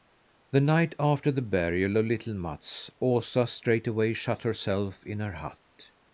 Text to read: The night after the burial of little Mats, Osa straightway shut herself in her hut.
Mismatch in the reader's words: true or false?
false